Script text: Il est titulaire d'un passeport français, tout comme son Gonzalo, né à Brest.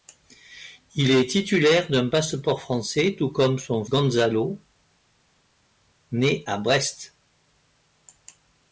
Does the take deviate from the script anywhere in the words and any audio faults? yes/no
no